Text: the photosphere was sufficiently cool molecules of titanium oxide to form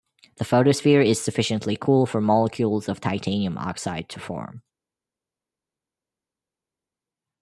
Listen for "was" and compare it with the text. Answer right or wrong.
wrong